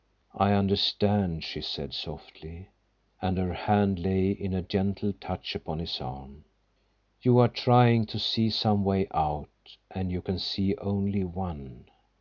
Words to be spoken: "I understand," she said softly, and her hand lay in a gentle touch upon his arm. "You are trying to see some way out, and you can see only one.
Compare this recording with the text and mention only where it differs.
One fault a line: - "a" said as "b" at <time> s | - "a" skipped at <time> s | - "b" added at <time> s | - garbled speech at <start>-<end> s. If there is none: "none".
none